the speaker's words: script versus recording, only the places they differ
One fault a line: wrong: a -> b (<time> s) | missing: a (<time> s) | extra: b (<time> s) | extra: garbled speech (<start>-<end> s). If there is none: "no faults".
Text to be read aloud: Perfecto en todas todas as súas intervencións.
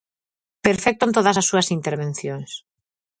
missing: todas (1.4 s)